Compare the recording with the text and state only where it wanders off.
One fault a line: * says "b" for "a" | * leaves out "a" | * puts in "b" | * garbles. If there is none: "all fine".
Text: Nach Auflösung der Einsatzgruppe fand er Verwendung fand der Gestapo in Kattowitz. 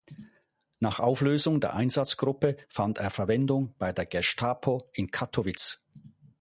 * says "bei" for "fand"